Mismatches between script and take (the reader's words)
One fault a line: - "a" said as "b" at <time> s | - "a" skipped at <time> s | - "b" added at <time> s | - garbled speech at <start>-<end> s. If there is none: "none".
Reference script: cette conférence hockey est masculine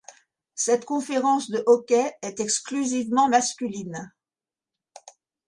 - "de" added at 1.5 s
- "exclusivement" added at 2.4 s